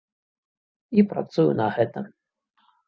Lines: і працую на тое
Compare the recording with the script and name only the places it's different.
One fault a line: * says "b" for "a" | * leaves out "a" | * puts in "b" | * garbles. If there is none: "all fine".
* says "гэта" for "тое"